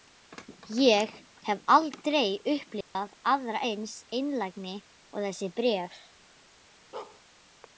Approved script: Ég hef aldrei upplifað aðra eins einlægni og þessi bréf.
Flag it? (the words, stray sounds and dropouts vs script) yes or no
yes